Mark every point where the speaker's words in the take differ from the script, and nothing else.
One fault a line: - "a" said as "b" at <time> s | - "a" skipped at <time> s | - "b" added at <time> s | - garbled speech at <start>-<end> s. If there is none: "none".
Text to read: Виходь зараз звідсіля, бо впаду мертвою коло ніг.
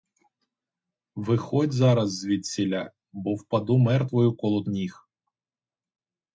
none